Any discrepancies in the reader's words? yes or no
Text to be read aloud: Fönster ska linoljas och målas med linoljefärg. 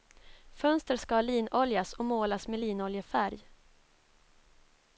no